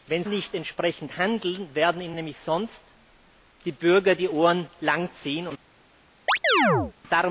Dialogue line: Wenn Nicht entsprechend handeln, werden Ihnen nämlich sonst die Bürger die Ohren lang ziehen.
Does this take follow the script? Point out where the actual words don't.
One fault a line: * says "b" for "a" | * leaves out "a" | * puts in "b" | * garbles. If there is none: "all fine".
all fine